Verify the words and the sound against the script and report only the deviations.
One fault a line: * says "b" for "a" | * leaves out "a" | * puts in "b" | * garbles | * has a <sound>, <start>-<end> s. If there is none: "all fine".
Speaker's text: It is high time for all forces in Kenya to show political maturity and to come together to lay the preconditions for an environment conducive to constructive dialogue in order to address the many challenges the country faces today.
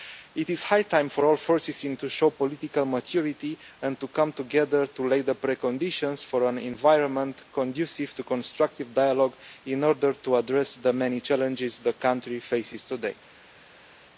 * leaves out "Kenya"